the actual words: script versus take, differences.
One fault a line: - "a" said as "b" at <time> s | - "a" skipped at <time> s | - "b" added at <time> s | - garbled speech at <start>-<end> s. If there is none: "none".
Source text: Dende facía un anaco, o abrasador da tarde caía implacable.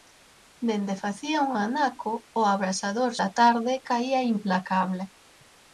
none